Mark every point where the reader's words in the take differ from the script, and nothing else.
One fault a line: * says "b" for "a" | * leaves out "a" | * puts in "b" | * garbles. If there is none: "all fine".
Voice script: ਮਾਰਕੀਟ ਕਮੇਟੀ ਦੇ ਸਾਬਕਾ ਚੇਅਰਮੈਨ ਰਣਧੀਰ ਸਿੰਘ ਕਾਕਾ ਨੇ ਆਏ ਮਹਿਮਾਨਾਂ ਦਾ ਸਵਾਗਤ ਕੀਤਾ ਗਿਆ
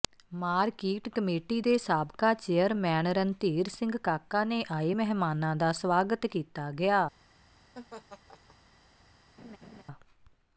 all fine